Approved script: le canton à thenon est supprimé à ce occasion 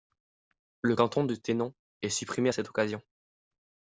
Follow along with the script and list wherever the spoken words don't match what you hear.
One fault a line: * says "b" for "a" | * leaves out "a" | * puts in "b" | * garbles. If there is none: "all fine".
* says "de" for "à"
* says "cette" for "ce"